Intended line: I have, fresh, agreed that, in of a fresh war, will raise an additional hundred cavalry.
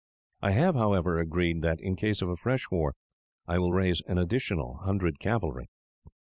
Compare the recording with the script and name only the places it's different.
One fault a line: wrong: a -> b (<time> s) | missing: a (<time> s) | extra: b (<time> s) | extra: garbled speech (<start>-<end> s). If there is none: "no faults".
wrong: fresh -> however (0.7 s)
extra: case (1.9 s)
extra: I (3.5 s)